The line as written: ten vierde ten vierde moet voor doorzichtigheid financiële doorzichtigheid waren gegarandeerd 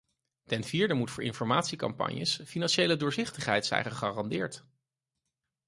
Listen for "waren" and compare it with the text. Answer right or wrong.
wrong